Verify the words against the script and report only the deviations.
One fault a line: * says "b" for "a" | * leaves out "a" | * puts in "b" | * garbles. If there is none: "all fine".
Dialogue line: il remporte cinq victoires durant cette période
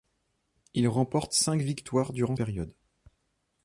* leaves out "cette"